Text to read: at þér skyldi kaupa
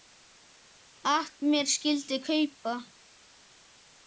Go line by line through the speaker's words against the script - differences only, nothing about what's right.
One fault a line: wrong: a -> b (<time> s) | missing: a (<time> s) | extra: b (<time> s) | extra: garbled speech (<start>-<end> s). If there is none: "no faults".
wrong: þér -> mér (1.5 s)